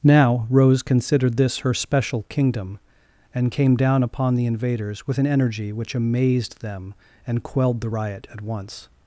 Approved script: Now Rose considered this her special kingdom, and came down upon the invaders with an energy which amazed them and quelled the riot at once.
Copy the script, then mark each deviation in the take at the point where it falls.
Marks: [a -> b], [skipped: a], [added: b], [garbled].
Now Rose considered this her special kingdom, and came down upon the invaders with an energy which amazed them and quelled the riot at once.